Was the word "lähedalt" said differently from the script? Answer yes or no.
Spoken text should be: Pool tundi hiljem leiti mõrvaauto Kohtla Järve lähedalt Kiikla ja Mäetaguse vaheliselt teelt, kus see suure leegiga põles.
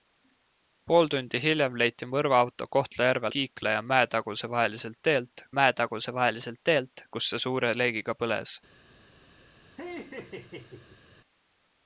yes